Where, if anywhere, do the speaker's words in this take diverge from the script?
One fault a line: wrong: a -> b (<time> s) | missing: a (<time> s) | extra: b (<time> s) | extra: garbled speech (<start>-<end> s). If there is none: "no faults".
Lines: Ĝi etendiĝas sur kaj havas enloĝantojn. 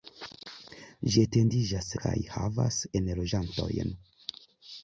missing: sur (1.9 s)